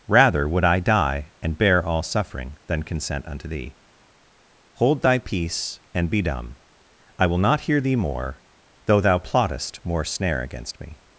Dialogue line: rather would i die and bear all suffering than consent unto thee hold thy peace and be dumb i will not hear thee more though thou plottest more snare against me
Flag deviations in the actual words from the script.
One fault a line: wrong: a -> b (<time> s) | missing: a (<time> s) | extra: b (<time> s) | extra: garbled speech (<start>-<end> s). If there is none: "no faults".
no faults